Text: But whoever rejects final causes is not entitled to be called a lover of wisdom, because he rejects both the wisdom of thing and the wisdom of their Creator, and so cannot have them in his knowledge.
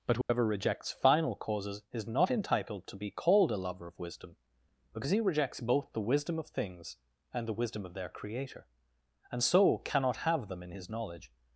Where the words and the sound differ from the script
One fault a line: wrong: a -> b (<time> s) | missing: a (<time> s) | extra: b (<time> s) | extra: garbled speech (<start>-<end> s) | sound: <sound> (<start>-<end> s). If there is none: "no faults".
sound: dropout (0.2-0.3 s)
wrong: thing -> things (6.5 s)